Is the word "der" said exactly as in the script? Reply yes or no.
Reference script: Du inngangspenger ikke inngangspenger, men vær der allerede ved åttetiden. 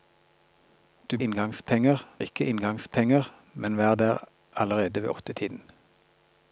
yes